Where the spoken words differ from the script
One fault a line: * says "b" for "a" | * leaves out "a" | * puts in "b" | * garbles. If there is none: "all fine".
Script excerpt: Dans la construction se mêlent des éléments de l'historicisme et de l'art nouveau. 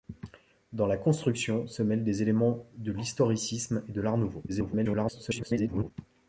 * garbles